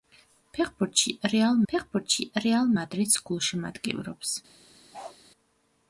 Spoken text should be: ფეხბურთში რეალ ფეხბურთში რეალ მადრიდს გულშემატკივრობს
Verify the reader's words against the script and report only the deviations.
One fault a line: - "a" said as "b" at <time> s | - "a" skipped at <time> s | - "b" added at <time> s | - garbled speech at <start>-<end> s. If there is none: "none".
none